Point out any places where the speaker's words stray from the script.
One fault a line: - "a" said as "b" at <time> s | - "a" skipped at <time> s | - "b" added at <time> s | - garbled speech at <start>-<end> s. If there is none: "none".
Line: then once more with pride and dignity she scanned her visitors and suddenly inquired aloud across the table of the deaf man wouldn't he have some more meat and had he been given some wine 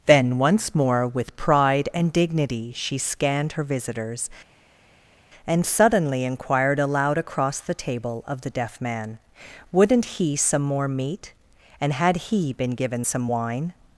- "have" skipped at 10.4 s